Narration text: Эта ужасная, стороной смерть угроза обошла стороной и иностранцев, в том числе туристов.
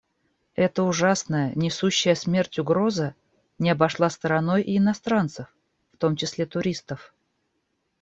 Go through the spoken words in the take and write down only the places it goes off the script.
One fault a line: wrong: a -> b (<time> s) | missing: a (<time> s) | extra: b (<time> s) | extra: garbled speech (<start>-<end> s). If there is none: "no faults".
wrong: стороной -> несущая (1.5 s)
extra: не (3.6 s)